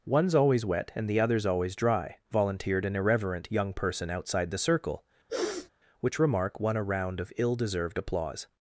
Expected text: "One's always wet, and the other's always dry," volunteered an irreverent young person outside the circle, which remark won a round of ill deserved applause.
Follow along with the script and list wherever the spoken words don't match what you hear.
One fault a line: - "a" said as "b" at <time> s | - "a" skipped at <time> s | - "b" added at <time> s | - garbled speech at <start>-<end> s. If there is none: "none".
none